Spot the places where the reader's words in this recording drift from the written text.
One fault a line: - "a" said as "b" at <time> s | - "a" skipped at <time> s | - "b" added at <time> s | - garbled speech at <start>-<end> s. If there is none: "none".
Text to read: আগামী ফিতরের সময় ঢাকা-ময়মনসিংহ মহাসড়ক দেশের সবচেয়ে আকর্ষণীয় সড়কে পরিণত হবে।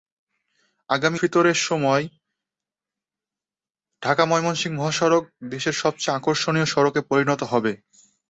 none